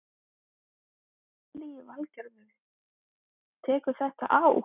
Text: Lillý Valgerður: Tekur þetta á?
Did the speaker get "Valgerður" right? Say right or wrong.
right